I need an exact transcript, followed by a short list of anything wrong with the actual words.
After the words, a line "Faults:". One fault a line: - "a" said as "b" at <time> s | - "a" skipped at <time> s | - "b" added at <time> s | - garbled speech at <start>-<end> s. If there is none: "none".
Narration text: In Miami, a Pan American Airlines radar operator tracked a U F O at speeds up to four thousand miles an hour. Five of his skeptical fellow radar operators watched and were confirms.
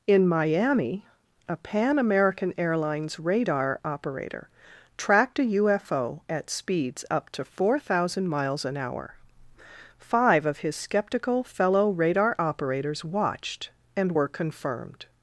In Miami, a Pan American Airlines radar operator tracked a U F O at speeds up to four thousand miles an hour. Five of his skeptical fellow radar operators watched and were confirmed.
Faults:
- "confirms" said as "confirmed" at 14.3 s